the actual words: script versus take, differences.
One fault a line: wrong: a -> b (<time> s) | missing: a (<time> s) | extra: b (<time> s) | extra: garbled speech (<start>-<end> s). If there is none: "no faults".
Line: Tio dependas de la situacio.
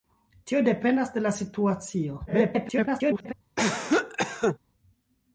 extra: garbled speech (2.3-3.3 s)